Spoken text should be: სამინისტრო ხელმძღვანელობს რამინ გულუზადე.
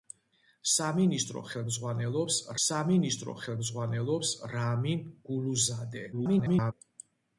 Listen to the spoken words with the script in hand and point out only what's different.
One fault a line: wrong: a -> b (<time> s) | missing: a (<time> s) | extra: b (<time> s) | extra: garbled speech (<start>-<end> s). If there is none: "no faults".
extra: სამინისტრო ხელმძღვანელობს (2.7 s)
extra: garbled speech (6.1-6.7 s)